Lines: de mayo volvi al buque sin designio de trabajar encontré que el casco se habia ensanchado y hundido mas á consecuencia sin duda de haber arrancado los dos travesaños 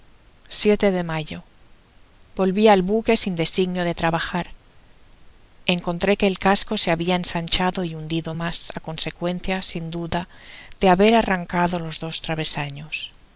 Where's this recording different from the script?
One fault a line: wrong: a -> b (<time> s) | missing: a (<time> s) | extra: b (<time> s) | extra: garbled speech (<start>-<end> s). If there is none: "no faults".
no faults